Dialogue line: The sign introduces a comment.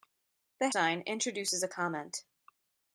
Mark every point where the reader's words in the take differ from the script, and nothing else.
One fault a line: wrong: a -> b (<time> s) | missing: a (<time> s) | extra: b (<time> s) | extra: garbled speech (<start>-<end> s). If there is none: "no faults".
no faults